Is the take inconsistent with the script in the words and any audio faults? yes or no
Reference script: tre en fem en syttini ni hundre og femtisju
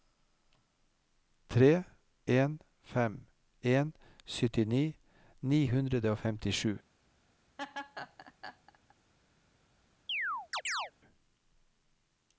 yes